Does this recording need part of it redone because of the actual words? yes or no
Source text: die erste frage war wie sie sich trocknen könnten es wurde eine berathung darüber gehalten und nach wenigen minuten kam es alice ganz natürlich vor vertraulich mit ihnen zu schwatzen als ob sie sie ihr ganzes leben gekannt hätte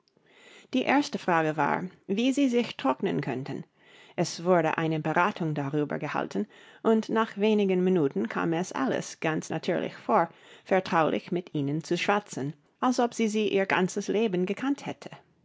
no